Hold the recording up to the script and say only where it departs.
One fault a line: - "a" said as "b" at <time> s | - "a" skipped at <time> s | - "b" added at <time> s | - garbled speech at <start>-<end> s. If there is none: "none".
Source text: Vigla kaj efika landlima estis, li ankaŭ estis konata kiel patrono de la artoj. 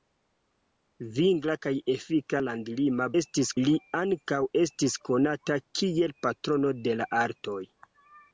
none